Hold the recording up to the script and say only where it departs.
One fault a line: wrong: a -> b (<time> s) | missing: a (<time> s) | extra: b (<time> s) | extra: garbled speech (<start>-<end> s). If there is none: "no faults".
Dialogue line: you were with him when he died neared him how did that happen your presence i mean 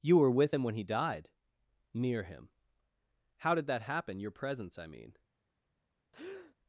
wrong: neared -> near (1.9 s)